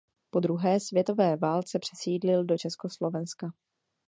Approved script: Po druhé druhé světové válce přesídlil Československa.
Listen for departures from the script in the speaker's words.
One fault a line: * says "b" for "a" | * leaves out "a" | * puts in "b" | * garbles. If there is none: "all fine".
* leaves out "druhé"
* puts in "do"